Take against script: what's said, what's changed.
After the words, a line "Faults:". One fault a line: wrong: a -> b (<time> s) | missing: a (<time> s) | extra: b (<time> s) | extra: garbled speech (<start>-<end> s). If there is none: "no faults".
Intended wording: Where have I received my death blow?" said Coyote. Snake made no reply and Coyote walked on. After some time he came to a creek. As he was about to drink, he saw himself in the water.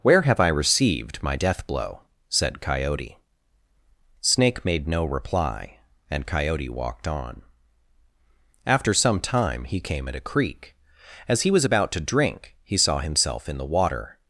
Where have I received my death blow?" said Coyote. Snake made no reply and Coyote walked on. After some time he came at a creek. As he was about to drink, he saw himself in the water.
Faults:
wrong: to -> at (10.1 s)